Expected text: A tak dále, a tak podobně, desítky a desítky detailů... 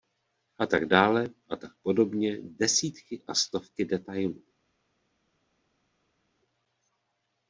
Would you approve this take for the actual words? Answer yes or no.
no